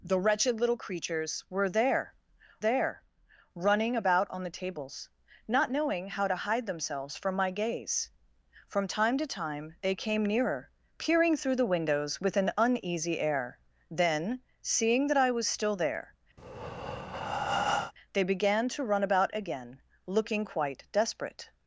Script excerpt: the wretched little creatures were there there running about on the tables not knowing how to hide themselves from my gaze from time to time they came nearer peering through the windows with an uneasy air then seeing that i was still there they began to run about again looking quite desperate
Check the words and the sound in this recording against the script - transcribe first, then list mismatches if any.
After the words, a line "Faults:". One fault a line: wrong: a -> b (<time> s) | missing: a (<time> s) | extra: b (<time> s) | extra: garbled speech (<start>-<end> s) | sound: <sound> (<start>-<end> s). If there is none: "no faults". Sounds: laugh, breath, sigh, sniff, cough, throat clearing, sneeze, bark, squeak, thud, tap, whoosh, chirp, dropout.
the wretched little creatures were there there running about on the tables not knowing how to hide themselves from my gaze from time to time they came nearer peering through the windows with an uneasy air then seeing that i was still there they began to run about again looking quite desperate
Faults:
sound: breath (16.4-17.9 s)